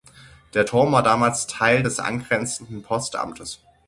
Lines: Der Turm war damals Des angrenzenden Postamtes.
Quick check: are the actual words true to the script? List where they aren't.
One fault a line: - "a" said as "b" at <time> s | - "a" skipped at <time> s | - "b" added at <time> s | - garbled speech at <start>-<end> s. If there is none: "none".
- "Teil" added at 1.5 s